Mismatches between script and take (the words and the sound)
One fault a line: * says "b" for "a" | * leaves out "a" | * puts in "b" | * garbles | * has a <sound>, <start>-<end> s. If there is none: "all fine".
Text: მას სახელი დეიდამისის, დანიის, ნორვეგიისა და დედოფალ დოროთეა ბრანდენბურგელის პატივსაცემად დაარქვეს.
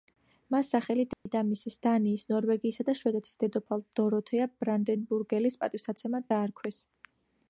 * has a dropout, 1.1-1.3 s
* puts in "შვედეთის"